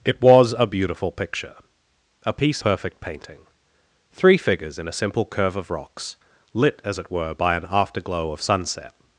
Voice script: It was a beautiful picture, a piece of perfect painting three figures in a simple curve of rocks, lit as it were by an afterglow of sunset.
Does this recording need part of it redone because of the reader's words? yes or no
yes